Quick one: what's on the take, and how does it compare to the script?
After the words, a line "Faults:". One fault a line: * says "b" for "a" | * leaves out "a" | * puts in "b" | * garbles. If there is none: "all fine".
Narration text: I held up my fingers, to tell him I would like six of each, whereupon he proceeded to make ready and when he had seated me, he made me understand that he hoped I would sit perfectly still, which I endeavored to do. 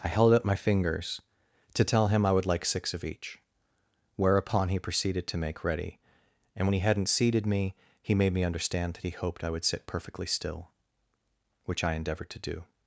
I held up my fingers, to tell him I would like six of each, whereupon he proceeded to make ready and when he hadn't seated me, he made me understand that he hoped I would sit perfectly still, which I endeavored to do.
Faults:
* says "hadn't" for "had"